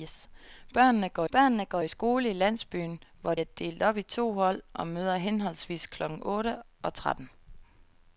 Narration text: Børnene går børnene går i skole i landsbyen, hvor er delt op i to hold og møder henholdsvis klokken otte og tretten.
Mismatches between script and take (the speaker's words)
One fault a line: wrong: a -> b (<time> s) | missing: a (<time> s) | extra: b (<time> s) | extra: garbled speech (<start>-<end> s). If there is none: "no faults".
no faults